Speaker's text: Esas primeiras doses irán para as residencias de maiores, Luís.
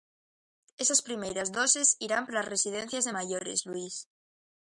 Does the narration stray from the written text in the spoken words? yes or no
no